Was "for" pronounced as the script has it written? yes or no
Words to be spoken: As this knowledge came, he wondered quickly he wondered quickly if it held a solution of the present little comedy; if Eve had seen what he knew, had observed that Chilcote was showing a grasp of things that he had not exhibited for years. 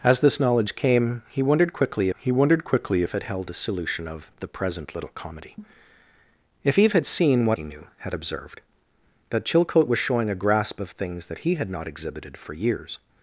yes